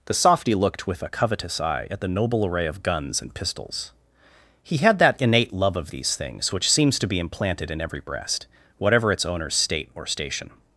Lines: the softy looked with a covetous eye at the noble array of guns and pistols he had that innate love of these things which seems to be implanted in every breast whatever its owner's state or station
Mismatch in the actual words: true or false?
false